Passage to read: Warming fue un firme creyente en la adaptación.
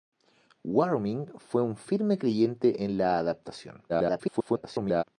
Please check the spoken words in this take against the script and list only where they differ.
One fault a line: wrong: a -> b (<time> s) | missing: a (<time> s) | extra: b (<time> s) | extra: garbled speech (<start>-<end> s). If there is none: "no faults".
extra: garbled speech (3.9-5.0 s)